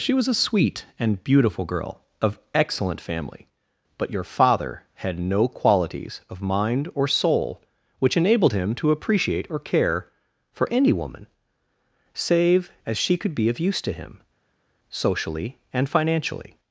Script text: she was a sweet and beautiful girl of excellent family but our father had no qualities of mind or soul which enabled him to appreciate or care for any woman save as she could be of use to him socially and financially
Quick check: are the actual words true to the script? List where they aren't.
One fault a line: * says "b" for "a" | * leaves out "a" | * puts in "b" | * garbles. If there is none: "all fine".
* says "your" for "our"